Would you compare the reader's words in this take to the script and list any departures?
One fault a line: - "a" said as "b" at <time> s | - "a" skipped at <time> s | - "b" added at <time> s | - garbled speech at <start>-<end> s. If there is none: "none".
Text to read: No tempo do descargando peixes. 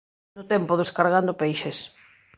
none